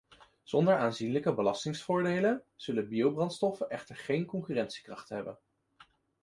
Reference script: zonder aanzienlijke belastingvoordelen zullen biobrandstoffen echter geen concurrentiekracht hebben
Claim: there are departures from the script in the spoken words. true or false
false